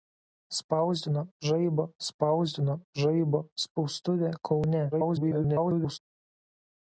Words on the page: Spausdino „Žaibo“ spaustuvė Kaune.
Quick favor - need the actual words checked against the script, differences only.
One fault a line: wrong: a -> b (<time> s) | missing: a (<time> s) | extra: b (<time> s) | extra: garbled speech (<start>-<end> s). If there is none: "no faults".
extra: spausdino Žaibo (2.1 s)
extra: garbled speech (4.9-6.0 s)